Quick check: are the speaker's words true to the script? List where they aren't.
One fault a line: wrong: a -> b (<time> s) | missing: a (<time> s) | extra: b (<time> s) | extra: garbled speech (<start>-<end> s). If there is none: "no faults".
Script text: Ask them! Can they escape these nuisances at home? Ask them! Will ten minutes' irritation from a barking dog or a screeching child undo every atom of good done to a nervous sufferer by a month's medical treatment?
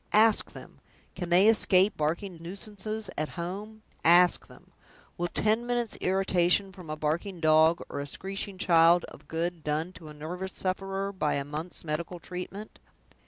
wrong: these -> barking (1.9 s)
missing: undo every atom (9.1 s)